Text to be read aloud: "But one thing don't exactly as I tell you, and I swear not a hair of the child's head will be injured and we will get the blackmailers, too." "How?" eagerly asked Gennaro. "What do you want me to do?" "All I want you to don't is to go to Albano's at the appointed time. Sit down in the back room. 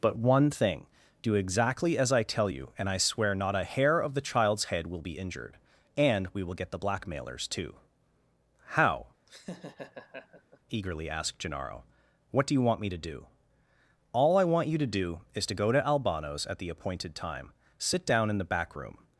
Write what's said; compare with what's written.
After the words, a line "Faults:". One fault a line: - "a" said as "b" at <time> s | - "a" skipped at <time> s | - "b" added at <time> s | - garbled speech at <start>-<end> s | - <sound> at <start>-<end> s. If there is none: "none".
"But one thing do exactly as I tell you, and I swear not a hair of the child's head will be injured and we will get the blackmailers, too." "How?" eagerly asked Gennaro. "What do you want me to do?" "All I want you to do is to go to Albano's at the appointed time. Sit down in the back room.
Faults:
- "don't" said as "do" at 1.2 s
- laugh at 9.3-10.6 s
- "don't" said as "do" at 14.9 s